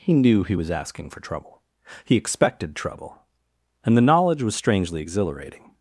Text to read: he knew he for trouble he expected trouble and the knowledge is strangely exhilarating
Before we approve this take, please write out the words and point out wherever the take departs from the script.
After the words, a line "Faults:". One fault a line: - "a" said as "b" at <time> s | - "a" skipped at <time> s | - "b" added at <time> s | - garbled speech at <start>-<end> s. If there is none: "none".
he knew he was asking for trouble he expected trouble and the knowledge was strangely exhilarating
Faults:
- "was asking" added at 0.5 s
- "is" said as "was" at 4.4 s